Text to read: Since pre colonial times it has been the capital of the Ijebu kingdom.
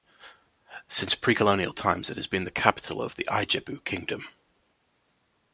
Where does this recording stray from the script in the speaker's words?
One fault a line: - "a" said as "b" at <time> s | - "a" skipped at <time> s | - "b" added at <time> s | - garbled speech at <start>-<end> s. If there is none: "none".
none